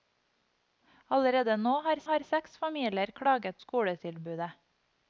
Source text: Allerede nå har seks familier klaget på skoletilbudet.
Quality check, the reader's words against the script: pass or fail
fail